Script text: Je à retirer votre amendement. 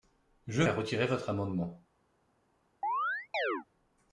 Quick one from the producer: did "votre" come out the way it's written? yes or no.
yes